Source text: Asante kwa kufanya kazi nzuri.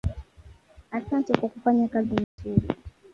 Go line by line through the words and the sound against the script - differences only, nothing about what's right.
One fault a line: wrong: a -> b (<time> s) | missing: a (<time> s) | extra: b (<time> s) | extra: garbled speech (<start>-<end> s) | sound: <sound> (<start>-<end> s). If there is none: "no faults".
sound: dropout (2.2-2.4 s)